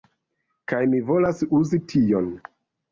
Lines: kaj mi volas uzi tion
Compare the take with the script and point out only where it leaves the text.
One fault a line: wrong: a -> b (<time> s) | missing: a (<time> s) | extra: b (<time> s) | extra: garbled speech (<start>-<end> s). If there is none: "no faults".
no faults